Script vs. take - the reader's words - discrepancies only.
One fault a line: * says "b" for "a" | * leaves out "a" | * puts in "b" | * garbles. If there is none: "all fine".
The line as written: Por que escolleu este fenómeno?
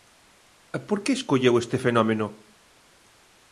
all fine